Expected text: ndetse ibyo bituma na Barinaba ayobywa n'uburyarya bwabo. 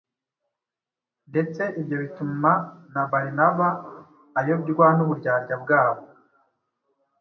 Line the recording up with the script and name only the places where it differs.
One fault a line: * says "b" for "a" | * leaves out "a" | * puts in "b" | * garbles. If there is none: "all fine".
all fine